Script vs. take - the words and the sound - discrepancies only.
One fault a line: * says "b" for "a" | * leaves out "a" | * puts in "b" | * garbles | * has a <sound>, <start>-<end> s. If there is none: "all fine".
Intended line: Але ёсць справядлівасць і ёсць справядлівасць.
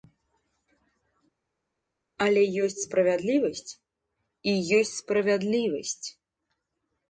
all fine